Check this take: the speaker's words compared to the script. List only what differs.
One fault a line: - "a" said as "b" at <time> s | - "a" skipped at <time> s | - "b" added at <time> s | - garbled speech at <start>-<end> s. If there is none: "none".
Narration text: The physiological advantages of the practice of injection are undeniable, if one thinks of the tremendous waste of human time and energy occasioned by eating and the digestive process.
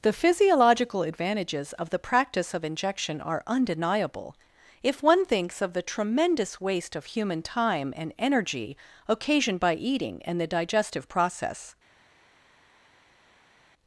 none